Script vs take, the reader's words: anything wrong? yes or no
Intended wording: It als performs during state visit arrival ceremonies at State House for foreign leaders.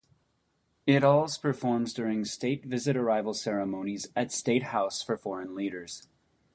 no